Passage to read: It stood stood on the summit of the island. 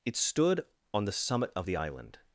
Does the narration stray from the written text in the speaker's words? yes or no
yes